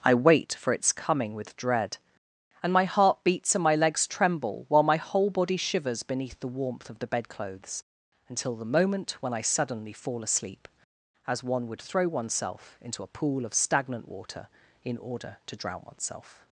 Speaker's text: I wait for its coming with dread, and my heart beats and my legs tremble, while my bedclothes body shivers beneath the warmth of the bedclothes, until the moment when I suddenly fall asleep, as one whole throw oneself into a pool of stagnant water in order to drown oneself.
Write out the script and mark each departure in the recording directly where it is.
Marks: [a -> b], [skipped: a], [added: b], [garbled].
I wait for its coming with dread, and my heart beats and my legs tremble, while my [bedclothes -> whole] body shivers beneath the warmth of the bedclothes, until the moment when I suddenly fall asleep, as one [whole -> would] throw oneself into a pool of stagnant water in order to drown oneself.